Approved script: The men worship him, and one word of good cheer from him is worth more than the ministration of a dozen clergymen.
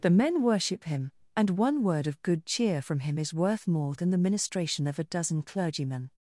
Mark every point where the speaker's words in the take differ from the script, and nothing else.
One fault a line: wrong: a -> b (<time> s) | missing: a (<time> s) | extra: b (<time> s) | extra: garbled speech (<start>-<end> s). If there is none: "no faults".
no faults